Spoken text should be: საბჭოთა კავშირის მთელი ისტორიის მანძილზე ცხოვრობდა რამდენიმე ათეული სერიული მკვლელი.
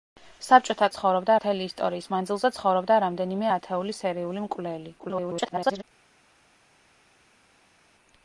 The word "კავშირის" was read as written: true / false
false